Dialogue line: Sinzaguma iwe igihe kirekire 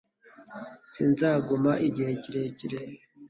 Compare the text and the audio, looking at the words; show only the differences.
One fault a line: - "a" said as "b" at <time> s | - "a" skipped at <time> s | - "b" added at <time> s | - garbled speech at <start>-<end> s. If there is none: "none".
- "iwe" skipped at 1.7 s